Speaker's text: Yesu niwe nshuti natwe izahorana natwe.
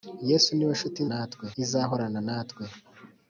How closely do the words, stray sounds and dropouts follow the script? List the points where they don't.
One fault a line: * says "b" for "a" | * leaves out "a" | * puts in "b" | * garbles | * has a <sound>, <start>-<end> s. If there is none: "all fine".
all fine